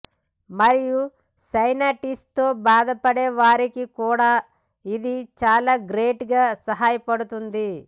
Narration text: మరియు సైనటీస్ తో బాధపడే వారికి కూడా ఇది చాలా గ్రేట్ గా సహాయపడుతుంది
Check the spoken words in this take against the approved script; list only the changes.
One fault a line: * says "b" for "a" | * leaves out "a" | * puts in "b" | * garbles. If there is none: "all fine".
all fine